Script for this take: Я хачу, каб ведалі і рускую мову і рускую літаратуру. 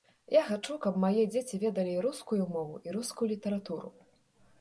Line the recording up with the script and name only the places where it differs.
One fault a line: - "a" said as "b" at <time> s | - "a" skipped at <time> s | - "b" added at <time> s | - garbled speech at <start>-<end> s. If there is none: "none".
- "мае дзеці" added at 1.0 s